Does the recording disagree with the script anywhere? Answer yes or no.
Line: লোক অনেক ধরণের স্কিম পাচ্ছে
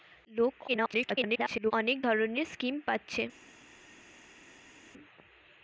yes